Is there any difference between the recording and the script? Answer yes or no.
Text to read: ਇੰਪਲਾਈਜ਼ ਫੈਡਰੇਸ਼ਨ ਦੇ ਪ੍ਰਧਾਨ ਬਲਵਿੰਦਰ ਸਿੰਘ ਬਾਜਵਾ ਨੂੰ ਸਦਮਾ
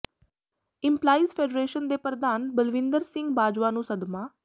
no